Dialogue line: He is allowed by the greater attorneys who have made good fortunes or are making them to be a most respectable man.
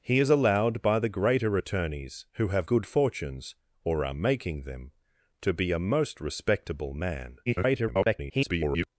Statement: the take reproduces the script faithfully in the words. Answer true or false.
false